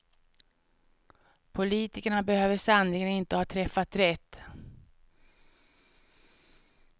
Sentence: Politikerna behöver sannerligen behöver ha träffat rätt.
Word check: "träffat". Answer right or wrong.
right